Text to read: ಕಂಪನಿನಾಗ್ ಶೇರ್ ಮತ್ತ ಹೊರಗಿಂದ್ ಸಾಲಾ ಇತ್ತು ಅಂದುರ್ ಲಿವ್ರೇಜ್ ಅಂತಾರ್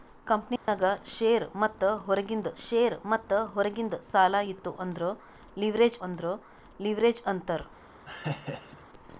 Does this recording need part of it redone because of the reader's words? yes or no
yes